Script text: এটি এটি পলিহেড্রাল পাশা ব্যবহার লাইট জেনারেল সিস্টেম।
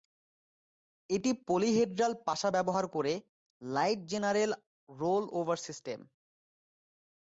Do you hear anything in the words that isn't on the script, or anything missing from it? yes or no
yes